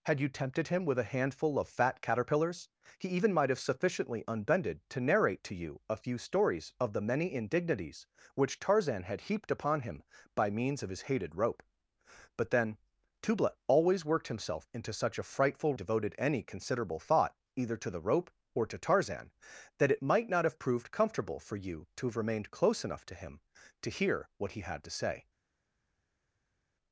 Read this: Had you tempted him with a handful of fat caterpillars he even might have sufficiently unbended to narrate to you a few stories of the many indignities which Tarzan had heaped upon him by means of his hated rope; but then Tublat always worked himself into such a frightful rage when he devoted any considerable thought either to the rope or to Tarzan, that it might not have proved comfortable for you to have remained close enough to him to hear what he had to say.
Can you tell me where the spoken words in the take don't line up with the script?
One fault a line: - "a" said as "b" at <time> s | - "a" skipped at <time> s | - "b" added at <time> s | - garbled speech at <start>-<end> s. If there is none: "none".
- "rage when he" skipped at 15.8 s